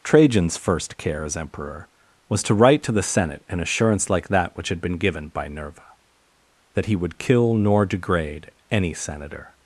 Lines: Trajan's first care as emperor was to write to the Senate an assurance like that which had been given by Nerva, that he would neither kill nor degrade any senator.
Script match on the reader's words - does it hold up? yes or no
no